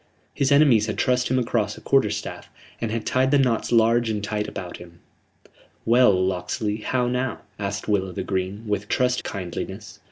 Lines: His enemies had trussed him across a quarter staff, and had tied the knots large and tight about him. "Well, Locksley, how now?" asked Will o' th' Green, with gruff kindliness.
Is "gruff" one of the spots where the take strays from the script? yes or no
yes